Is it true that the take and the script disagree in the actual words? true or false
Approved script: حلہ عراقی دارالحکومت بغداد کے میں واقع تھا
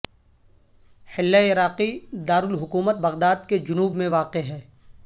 true